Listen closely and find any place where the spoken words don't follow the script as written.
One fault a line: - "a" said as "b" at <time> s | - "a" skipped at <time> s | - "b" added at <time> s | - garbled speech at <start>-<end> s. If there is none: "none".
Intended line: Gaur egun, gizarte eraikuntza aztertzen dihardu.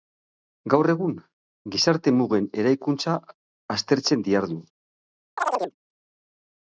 - "mugen" added at 2.2 s